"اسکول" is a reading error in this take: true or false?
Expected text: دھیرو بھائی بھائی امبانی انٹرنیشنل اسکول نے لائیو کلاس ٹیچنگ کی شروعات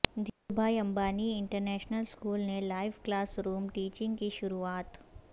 false